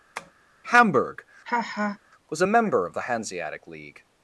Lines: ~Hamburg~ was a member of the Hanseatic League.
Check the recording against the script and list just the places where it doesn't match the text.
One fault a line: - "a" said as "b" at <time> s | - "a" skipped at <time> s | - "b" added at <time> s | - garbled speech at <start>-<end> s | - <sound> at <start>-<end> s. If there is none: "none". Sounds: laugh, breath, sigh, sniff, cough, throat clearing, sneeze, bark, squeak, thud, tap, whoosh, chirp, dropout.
- tap at 0.2-0.3 s
- laugh at 1.4-2.0 s